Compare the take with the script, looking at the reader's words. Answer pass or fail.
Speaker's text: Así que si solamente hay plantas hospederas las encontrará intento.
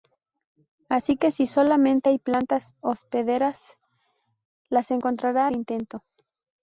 pass